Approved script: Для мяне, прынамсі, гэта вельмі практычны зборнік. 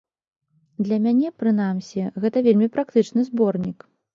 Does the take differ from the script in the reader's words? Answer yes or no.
no